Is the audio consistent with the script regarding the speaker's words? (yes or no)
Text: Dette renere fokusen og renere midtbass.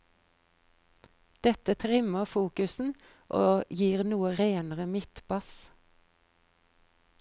no